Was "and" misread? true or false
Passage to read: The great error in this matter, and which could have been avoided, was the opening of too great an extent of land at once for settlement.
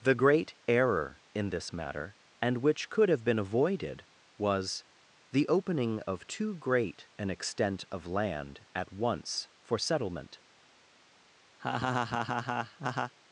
false